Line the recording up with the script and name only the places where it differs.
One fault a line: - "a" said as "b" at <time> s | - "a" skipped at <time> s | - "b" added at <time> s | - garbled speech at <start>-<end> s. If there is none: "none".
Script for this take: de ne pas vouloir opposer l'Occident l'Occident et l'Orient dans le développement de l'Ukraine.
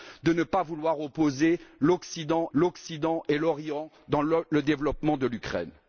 none